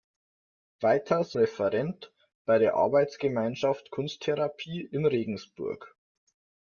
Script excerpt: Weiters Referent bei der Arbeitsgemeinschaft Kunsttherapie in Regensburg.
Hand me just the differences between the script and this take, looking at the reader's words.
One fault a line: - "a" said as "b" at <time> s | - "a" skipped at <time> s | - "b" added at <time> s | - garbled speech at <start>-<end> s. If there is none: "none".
none